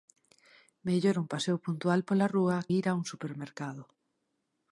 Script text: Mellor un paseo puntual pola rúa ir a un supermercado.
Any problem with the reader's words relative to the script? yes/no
no